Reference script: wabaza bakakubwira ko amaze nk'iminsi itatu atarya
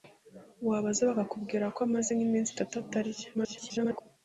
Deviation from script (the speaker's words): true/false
true